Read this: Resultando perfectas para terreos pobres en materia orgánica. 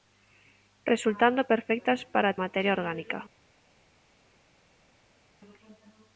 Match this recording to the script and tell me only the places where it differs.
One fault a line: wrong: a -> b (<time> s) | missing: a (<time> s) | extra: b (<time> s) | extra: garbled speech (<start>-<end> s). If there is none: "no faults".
missing: terreos pobres en (2.4 s)